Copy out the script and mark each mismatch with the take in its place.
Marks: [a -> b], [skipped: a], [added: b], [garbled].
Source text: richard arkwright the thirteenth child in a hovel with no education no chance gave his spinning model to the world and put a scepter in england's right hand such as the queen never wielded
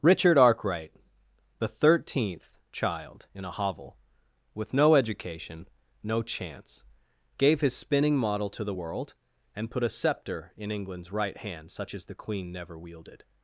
richard arkwright the thirteenth child in a hovel with no education no chance gave his spinning model to the world and put a scepter in england's right hand such as the queen never wielded